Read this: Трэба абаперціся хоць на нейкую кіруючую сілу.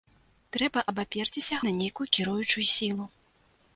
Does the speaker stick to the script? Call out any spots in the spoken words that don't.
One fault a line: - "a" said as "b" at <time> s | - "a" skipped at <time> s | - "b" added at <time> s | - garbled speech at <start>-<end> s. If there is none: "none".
- "хоць" skipped at 1.6 s